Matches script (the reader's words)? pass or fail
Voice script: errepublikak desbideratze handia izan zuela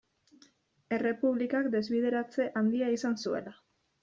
pass